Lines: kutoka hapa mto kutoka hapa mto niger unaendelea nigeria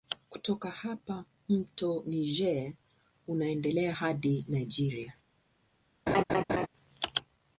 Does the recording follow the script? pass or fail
fail